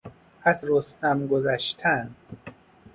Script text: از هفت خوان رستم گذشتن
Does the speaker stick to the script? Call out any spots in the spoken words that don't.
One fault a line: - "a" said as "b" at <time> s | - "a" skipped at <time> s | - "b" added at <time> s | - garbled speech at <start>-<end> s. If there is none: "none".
- "هفت خوان" skipped at 0.7 s